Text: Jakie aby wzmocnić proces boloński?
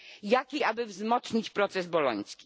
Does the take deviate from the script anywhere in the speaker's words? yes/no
no